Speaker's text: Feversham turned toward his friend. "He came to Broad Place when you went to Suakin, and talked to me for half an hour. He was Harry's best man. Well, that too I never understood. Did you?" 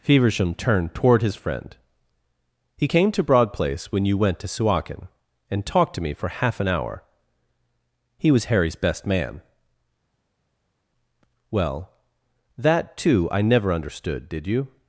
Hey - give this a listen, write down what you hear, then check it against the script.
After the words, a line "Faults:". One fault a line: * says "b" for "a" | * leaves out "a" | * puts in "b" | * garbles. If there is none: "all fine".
Feversham turned toward his friend. "He came to Broad Place when you went to Suakin, and talked to me for half an hour. He was Harry's best man. Well, that too I never understood. Did you?"
Faults:
all fine